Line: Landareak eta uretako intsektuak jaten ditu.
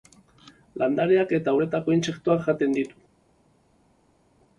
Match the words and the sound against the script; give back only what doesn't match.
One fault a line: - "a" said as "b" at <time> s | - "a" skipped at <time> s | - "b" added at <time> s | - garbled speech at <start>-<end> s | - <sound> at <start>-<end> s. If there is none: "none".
none